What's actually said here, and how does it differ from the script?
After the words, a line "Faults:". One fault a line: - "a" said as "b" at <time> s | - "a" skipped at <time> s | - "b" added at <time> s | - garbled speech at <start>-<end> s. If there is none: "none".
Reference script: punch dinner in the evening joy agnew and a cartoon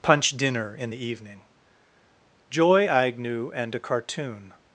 punch dinner in the evening joy agnew and a cartoon
Faults:
none